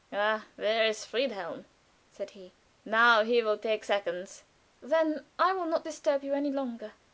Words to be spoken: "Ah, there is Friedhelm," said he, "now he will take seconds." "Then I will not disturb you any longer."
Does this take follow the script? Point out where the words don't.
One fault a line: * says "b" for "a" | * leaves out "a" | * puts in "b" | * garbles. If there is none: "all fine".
all fine